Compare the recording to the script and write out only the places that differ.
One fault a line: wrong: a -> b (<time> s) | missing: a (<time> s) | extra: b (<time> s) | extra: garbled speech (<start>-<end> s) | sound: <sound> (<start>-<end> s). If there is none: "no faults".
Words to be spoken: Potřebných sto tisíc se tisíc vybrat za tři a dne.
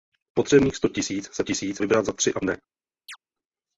sound: chirp (3.1-3.2 s)